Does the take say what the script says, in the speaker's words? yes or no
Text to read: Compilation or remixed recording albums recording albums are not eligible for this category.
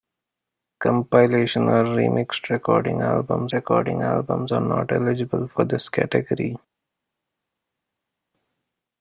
yes